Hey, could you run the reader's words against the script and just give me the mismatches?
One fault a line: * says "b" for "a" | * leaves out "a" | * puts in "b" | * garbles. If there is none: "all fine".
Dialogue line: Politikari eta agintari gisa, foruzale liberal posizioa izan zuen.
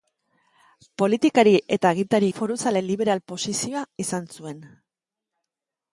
* leaves out "gisa"